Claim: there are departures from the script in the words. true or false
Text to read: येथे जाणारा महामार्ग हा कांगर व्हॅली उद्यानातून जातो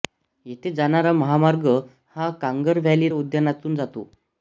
false